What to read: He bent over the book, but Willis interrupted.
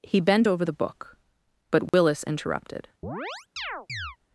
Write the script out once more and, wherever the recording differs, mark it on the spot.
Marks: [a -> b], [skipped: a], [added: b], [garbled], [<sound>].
He bent over the book, but Willis [dropout] interrupted. [chirp]